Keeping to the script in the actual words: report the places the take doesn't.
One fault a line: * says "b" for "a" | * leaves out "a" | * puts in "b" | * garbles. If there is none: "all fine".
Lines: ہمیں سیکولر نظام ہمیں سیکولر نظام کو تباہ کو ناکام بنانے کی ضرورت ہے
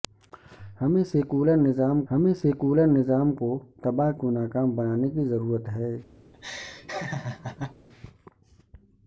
all fine